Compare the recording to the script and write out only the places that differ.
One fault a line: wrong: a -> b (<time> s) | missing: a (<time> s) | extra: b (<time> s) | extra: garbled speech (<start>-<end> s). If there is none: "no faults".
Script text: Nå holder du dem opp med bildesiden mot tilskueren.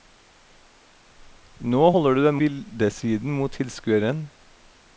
missing: opp med (2.4 s)